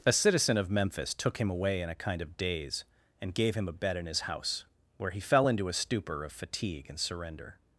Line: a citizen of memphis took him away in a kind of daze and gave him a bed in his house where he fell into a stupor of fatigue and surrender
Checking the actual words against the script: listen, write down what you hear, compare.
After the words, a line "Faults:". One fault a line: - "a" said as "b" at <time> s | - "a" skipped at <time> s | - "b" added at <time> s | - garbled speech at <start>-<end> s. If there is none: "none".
a citizen of memphis took him away in a kind of daze and gave him a bed in his house where he fell into a stupor of fatigue and surrender
Faults:
none